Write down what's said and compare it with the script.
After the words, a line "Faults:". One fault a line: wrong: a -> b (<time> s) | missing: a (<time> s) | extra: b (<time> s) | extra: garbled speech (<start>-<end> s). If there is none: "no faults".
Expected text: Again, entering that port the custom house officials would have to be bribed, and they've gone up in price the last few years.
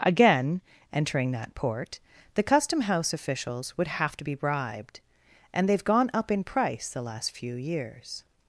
Again, entering that port the custom house officials would have to be bribed, and they've gone up in price the last few years.
Faults:
no faults